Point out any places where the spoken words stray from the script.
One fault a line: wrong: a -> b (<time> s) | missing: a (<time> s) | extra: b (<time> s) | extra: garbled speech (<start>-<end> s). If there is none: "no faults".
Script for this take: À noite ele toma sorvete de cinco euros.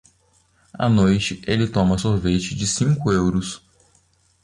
no faults